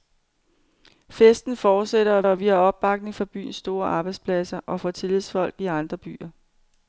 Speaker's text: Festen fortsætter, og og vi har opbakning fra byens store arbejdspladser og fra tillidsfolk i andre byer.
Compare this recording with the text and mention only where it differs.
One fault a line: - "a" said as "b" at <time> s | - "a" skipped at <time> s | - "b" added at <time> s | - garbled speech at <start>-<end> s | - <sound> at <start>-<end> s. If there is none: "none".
none